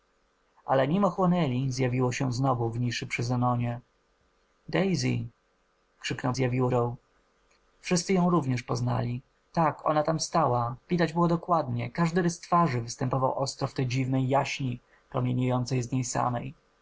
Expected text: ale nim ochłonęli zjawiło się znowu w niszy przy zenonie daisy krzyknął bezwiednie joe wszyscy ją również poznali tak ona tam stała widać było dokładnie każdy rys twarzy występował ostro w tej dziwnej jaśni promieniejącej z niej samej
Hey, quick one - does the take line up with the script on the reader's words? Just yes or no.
no